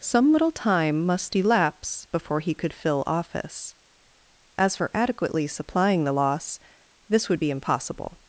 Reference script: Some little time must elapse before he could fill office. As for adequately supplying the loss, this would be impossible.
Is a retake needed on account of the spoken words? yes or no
no